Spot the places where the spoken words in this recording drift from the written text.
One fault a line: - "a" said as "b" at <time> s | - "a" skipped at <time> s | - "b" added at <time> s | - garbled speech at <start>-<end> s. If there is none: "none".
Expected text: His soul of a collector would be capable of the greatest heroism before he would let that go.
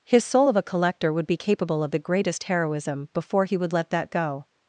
none